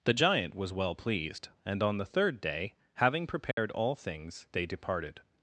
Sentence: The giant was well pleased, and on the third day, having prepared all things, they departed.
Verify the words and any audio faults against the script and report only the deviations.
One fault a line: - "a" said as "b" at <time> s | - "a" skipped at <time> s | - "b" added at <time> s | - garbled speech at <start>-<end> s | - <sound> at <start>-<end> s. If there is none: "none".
- dropout at 3.5-3.6 s